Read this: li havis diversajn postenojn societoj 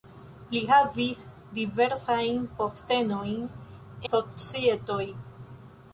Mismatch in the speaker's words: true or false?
false